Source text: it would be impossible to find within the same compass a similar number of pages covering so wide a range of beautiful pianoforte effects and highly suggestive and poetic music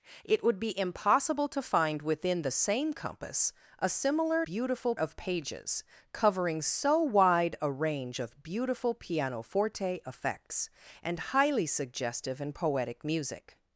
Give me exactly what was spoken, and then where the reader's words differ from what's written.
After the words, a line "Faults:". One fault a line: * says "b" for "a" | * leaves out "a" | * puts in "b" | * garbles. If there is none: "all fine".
it would be impossible to find within the same compass a similar beautiful of pages covering so wide a range of beautiful pianoforte effects and highly suggestive and poetic music
Faults:
* says "beautiful" for "number"